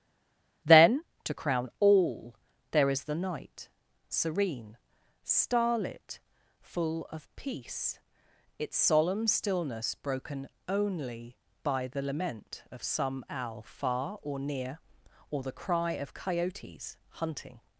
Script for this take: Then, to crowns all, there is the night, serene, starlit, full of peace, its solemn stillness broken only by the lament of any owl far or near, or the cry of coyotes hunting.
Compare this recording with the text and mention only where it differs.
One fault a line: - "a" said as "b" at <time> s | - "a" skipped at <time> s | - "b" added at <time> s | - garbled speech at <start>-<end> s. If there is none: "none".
- "crowns" said as "crown" at 1.3 s
- "any" said as "some" at 12.8 s